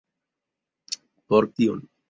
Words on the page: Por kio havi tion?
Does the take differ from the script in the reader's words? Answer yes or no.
yes